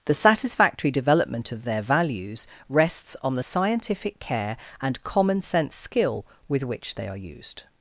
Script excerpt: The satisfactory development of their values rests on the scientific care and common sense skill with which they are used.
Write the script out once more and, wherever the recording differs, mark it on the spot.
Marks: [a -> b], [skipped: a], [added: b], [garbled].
The satisfactory development of their values rests on the scientific care and common sense skill with which they are used.